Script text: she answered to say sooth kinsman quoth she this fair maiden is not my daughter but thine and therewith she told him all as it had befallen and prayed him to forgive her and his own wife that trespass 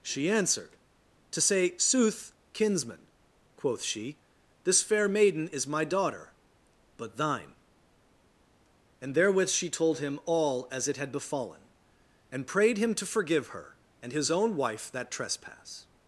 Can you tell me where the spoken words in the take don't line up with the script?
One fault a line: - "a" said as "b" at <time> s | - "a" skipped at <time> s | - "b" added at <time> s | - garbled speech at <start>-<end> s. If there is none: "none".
- "not" skipped at 5.7 s